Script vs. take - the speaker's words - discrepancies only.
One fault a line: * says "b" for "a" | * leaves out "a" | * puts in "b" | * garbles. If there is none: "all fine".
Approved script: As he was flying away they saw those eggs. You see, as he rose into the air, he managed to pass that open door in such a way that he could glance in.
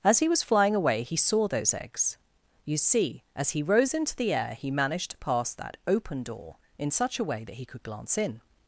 * says "he" for "they"